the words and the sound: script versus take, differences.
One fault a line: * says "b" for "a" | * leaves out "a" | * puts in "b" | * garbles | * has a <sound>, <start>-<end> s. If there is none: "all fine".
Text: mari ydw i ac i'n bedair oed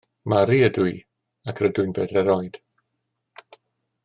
* puts in "rydw"